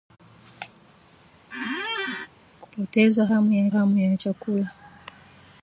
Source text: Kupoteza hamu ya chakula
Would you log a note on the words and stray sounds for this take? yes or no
yes